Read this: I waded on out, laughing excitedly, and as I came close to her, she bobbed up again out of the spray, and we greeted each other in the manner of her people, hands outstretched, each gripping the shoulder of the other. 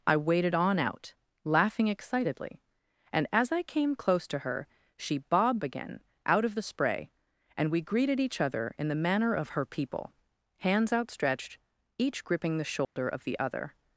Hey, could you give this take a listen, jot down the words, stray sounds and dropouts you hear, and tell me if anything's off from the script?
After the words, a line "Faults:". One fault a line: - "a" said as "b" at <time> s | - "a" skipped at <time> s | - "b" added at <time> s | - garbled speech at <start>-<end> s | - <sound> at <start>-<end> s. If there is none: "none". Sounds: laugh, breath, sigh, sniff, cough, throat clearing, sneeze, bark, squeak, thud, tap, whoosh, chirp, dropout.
I waded on out, laughing excitedly, and as I came close to her, she bobbed again out of the spray, and we greeted each other in the manner of her people, hands outstretched, each gripping the shoulder of the other.
Faults:
- "up" skipped at 5.6 s
- dropout at 12.8-13.0 s